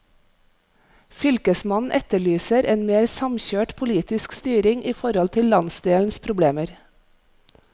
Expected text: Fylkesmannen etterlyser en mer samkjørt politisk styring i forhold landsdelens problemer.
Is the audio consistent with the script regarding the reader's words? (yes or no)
no